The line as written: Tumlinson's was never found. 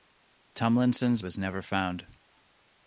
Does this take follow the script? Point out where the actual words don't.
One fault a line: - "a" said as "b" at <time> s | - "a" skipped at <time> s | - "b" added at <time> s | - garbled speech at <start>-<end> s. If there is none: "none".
none